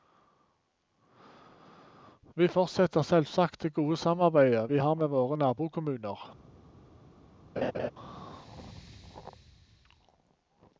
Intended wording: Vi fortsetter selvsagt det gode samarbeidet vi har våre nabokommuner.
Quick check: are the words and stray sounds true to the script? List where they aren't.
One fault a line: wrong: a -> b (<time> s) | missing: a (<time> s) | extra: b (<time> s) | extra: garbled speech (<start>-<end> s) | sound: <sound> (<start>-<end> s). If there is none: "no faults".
extra: med (4.9 s)
sound: laugh (7.6-7.9 s)